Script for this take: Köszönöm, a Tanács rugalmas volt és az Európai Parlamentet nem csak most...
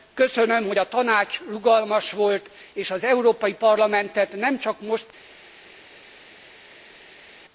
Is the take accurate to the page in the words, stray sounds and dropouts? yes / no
no